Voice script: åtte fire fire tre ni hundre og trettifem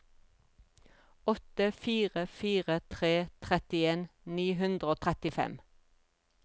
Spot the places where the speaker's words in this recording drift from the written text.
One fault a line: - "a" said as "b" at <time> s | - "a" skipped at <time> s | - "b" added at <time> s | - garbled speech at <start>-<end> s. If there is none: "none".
- "trettien" added at 3.5 s